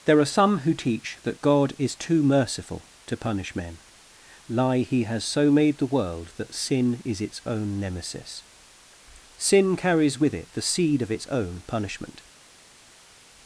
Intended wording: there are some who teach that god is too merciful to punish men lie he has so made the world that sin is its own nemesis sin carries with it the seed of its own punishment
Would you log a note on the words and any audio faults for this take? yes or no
no